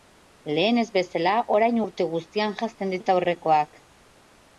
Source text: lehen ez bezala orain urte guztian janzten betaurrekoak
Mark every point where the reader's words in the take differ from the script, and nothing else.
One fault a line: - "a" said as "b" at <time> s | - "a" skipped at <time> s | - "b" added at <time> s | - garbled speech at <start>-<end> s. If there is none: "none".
none